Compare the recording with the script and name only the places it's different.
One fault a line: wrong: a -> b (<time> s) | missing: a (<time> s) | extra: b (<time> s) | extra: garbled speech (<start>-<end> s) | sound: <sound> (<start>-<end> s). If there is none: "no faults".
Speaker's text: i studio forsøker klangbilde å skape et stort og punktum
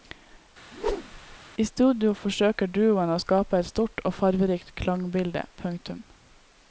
sound: whoosh (0.7-1.4 s)
wrong: klangbilde -> duoen (2.8 s)
extra: farverikt klangbilde (4.2 s)